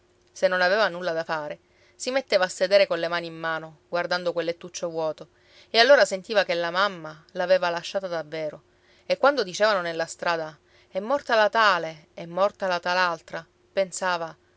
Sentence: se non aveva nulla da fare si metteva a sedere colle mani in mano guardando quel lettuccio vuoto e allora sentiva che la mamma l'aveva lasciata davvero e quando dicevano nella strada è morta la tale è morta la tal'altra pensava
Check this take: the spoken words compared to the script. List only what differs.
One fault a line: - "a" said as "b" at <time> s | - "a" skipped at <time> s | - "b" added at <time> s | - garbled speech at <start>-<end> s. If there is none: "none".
none